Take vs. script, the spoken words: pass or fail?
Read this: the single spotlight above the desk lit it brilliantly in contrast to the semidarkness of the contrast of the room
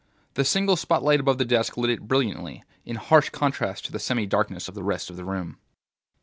fail